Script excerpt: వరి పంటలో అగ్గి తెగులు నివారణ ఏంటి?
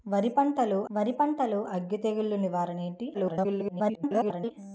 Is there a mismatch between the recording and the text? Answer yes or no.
yes